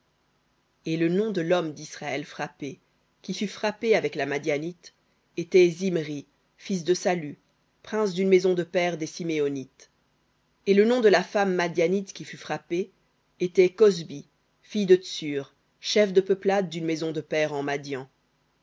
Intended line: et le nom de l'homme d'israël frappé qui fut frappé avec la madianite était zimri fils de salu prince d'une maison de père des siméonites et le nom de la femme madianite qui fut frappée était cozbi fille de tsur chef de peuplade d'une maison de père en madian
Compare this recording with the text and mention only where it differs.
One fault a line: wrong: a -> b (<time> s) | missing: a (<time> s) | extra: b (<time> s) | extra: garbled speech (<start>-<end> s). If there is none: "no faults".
no faults